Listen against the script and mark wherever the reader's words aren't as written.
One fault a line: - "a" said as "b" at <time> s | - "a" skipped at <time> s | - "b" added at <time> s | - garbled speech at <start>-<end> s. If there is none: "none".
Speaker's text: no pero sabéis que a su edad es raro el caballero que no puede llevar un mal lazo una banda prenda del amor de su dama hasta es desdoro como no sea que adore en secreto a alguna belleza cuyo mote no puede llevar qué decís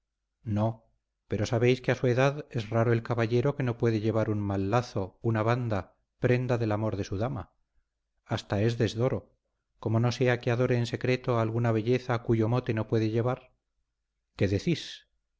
none